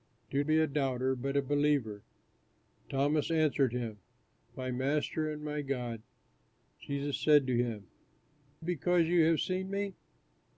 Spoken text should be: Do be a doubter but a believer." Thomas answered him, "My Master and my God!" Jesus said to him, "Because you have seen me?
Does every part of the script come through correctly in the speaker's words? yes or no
yes